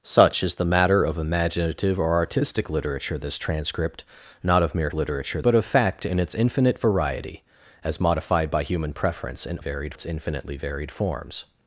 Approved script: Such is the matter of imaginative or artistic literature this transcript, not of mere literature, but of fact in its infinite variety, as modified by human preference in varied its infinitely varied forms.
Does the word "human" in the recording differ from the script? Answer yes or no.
no